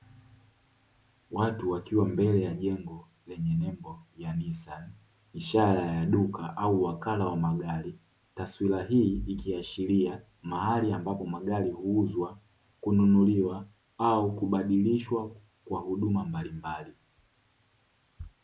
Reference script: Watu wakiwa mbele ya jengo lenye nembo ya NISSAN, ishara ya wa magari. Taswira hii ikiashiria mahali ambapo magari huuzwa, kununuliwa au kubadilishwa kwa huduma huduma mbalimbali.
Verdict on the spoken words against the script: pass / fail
fail